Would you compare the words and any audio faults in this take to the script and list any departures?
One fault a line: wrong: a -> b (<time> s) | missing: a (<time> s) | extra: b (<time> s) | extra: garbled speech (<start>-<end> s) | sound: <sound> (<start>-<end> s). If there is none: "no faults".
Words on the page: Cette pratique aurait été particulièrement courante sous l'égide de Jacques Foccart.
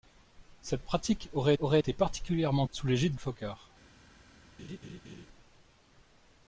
extra: aurait (1.6 s)
missing: courante (2.7 s)
missing: de Jacques (3.1 s)
sound: laugh (4.6-5.3 s)